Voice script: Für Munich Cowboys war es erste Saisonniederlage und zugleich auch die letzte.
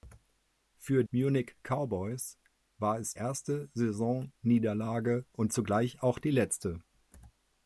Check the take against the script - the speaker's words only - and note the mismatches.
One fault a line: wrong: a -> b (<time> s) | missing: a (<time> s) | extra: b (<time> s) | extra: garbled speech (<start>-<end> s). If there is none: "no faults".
no faults